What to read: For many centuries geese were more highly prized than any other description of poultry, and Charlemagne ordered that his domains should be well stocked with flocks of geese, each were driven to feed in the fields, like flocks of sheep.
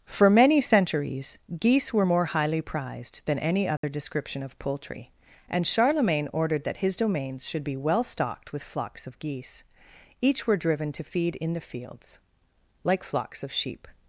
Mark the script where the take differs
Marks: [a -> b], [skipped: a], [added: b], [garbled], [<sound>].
For many centuries geese were more highly prized than any other [dropout] description of poultry, and Charlemagne ordered that his domains should be well stocked with flocks of geese, each were driven to feed in the fields, like flocks of sheep.